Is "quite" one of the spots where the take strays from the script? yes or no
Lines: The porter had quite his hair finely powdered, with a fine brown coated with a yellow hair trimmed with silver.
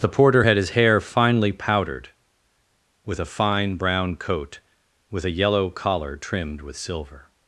yes